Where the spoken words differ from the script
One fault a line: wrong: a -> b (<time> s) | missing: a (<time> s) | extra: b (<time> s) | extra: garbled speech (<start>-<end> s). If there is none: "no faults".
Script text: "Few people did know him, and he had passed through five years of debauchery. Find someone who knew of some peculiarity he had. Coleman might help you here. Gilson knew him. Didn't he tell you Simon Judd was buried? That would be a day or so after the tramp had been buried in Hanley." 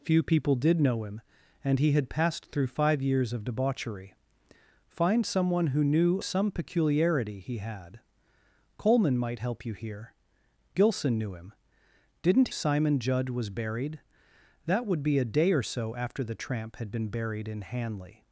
missing: of (6.2 s)
missing: he tell you (12.5 s)